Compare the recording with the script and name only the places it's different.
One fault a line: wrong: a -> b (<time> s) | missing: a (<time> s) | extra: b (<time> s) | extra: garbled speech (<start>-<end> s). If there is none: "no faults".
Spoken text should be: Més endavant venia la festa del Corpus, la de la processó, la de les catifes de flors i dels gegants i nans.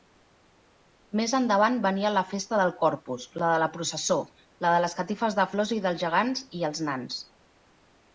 extra: els (6.7 s)